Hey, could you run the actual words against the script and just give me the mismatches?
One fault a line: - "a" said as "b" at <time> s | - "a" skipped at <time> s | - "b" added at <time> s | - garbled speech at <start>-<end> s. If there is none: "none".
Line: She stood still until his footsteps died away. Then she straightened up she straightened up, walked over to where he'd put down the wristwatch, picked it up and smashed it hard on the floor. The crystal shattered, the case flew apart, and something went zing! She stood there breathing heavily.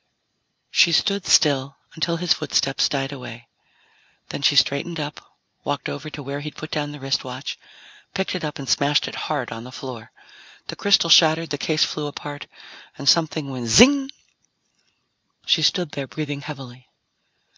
- "she straightened up" skipped at 5.2 s